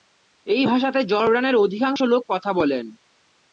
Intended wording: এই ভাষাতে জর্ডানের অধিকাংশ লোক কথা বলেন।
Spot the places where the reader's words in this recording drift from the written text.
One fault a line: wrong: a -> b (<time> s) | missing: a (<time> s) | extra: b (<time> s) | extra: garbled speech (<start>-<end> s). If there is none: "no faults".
no faults